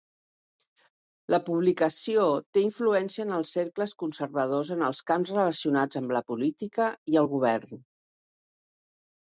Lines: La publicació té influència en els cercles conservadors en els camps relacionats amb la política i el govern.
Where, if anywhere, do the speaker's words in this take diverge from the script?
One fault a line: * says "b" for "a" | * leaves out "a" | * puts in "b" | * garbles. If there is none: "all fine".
all fine